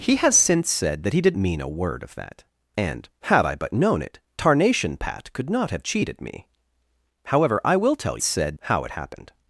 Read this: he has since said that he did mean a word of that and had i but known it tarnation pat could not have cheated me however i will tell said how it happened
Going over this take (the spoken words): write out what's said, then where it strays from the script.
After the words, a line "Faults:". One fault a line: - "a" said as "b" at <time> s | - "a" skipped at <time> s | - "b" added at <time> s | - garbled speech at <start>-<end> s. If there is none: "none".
he has since said that he did mean a word of that and had i but known it tarnation pat could not have cheated me however i will tell said how it happened
Faults:
none